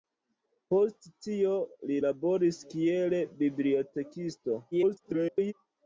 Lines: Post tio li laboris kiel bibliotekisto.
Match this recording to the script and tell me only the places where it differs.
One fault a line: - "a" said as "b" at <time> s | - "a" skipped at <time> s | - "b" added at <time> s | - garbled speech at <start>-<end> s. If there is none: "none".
- garbled speech at 4.7-5.5 s